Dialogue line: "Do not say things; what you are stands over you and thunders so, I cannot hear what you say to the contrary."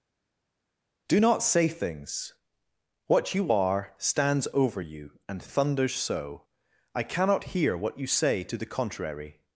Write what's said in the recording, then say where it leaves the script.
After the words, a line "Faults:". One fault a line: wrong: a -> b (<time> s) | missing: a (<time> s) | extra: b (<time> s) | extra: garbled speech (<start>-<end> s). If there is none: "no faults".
"Do not say things; what you are stands over you and thunders so, I cannot hear what you say to the contrary."
Faults:
no faults